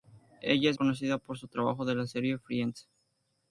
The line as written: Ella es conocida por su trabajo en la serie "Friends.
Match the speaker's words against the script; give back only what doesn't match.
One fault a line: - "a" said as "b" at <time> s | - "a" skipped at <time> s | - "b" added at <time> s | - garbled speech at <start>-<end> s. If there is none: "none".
none